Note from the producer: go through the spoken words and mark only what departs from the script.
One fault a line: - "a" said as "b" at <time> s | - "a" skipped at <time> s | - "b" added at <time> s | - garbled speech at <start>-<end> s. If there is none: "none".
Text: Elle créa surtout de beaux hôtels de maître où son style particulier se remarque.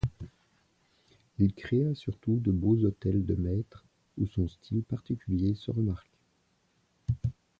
- "Elle" said as "Il" at 1.4 s